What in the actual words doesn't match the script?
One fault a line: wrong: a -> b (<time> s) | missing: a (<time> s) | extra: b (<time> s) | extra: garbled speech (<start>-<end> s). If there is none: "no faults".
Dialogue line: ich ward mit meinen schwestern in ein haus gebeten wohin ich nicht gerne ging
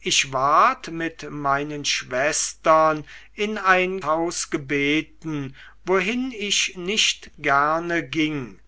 no faults